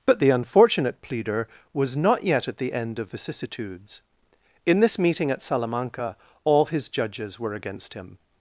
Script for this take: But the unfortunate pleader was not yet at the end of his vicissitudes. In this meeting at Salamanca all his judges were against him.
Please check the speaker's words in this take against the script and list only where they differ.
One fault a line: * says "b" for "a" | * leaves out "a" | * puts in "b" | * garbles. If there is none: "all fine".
* leaves out "his"